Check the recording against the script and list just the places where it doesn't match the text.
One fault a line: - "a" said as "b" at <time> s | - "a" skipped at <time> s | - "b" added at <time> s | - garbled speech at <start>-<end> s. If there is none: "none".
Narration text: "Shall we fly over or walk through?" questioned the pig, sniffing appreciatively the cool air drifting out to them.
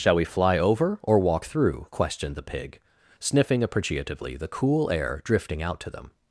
none